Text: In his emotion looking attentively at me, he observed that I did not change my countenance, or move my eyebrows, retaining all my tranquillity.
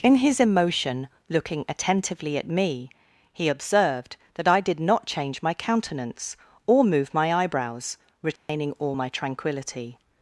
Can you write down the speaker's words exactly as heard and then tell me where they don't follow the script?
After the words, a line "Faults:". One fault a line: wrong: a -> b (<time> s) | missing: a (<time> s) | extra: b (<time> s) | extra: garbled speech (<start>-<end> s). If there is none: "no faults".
In his emotion looking attentively at me, he observed that I did not change my countenance, or move my eyebrows, retaining all my tranquillity.
Faults:
no faults